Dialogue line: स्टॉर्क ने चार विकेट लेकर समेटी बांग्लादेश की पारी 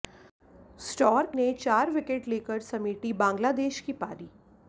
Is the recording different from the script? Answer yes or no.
no